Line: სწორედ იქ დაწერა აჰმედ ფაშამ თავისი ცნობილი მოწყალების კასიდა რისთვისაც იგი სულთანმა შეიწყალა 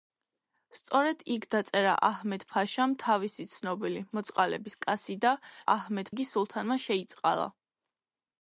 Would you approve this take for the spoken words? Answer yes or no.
no